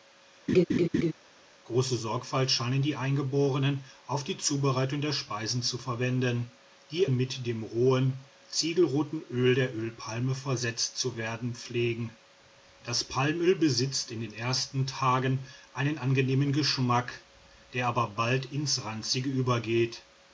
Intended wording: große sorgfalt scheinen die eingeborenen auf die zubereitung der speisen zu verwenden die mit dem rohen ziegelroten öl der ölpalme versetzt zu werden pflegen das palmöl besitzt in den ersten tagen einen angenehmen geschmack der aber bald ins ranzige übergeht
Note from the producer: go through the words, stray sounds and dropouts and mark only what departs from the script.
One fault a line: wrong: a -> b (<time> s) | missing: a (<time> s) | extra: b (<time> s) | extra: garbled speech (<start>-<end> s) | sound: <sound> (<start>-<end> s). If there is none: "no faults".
sound: laugh (0.5-1.1 s)